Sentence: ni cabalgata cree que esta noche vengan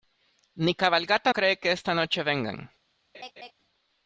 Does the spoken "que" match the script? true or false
true